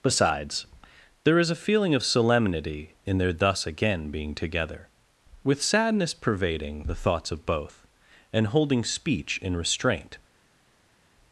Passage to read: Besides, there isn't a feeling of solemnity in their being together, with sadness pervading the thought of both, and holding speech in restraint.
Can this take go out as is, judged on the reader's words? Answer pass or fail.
fail